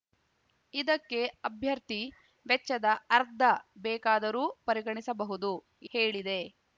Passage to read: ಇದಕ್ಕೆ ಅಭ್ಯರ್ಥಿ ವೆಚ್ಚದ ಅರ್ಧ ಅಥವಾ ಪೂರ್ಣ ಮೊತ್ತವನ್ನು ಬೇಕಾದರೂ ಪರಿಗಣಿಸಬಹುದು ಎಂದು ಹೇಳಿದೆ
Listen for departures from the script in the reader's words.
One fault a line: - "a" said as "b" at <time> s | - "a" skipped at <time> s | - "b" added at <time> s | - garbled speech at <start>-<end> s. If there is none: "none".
- "ಅಥವಾ ಪೂರ್ಣ ಮೊತ್ತವನ್ನು" skipped at 3.4 s
- "ಎಂದು" skipped at 5.5 s